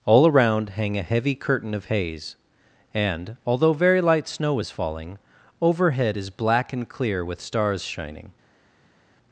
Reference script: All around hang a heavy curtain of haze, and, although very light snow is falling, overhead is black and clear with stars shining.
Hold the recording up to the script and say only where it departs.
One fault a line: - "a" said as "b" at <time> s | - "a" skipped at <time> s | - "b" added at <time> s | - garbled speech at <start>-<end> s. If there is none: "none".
none